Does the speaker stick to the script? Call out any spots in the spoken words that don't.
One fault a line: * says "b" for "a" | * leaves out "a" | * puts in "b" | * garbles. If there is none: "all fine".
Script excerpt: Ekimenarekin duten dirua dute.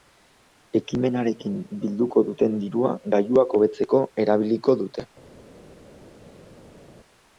* puts in "bilduko"
* puts in "gailuak hobetzeko erabiliko"